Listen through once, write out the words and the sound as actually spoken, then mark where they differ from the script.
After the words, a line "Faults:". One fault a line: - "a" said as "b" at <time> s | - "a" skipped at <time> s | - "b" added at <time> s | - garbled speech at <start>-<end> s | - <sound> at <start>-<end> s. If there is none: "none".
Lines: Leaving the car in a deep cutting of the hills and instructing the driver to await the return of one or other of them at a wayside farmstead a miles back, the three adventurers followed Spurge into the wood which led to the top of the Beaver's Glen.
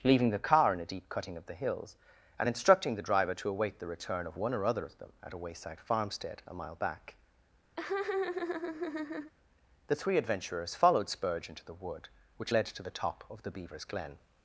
Leaving the car in a deep cutting of the hills and instructing the driver to await the return of one or other of them at a wayside farmstead a mile back, the three adventurers followed Spurge into the wood which led to the top of the Beaver's Glen.
Faults:
- "miles" said as "mile" at 6.5 s
- laugh at 7.8-9.3 s